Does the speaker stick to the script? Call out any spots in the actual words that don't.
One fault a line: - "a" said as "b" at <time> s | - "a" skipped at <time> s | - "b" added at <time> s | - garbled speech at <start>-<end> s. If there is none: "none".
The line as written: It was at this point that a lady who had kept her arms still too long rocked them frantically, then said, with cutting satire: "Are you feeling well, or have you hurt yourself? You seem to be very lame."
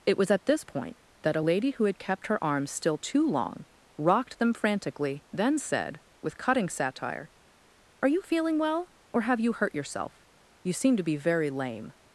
none